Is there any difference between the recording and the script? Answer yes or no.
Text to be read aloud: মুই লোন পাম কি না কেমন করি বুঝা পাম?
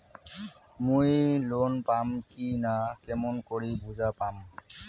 no